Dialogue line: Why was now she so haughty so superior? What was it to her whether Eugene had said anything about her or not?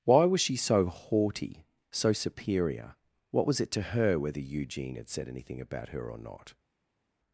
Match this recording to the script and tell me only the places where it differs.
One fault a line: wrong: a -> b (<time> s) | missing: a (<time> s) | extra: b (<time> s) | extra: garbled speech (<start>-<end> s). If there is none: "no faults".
missing: now (0.4 s)